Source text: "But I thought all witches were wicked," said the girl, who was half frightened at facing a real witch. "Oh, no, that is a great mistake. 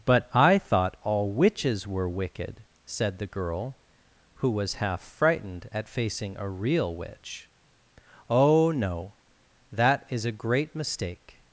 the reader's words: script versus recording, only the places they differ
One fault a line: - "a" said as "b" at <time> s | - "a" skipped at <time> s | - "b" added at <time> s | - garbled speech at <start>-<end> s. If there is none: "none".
none